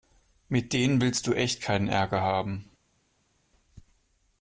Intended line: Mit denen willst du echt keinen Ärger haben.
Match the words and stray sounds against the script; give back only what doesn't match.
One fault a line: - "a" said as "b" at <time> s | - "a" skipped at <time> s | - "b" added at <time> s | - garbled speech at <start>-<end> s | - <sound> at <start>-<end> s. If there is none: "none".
none